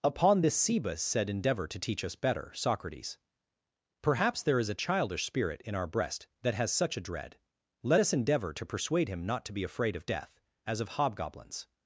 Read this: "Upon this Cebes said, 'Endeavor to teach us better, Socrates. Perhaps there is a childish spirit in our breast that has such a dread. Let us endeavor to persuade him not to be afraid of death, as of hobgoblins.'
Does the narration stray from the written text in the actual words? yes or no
no